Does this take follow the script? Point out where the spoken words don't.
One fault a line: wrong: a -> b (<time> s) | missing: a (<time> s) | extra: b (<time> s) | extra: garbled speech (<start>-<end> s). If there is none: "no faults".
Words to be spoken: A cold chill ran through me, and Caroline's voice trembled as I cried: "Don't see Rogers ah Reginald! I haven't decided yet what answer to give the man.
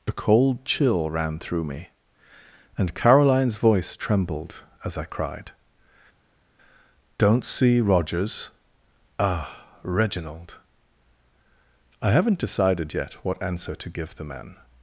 no faults